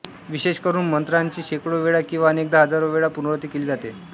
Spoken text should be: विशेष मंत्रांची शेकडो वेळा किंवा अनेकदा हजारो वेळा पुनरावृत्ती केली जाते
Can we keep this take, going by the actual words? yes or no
no